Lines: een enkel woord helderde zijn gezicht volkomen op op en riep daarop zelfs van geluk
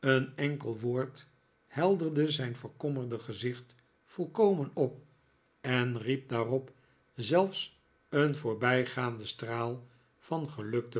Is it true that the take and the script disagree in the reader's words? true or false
true